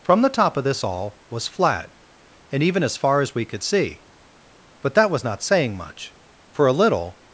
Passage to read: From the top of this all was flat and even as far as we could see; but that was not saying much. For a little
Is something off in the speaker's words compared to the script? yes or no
no